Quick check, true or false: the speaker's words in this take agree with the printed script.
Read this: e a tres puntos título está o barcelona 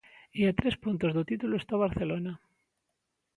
false